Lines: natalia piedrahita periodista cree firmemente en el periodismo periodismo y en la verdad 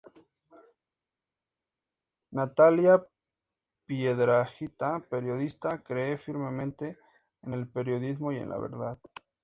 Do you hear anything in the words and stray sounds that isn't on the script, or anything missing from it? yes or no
yes